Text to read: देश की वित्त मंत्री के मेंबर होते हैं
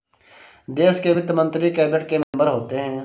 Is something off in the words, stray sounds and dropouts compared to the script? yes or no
yes